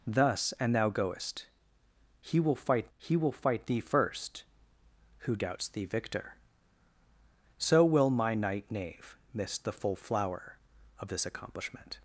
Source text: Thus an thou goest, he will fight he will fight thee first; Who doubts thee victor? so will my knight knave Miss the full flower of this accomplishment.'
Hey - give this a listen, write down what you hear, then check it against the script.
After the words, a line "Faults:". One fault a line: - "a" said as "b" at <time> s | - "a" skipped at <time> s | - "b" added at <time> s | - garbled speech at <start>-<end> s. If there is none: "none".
Thus an thou goest, he will fight he will fight thee first; Who doubts thee victor? so will my knight knave Miss the full flower of this accomplishment.'
Faults:
none